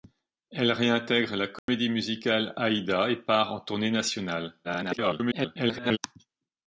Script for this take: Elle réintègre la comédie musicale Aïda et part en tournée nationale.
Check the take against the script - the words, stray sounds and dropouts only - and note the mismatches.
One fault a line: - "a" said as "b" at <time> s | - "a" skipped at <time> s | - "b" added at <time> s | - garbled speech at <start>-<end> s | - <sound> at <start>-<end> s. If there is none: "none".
- dropout at 1.6-1.7 s
- garbled speech at 4.6-6.0 s